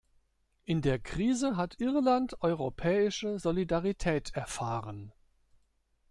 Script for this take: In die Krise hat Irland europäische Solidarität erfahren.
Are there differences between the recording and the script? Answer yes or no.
yes